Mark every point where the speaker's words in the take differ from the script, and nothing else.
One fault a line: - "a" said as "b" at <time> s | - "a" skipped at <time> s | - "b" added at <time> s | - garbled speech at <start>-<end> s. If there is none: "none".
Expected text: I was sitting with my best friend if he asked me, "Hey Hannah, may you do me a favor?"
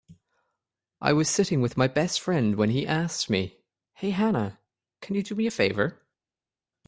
- "if" said as "when" at 2.5 s
- "may" said as "can" at 5.0 s